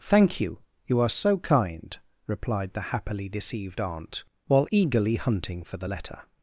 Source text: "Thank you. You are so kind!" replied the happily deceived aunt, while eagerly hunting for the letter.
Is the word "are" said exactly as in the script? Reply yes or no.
yes